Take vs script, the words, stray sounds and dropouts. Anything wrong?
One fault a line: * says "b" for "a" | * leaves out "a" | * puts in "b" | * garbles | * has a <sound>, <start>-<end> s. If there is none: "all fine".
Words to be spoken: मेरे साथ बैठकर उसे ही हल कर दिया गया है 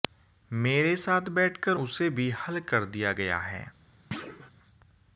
* says "भी" for "ही"
* has a thud, 4.1-4.5 s